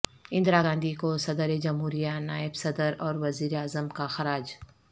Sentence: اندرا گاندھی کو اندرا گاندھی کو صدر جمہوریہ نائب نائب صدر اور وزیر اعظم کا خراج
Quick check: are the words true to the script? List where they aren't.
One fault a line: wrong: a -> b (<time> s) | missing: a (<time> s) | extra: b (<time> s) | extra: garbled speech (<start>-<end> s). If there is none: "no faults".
missing: اندرا گاندھی کو (1.1 s)
missing: نائب (2.6 s)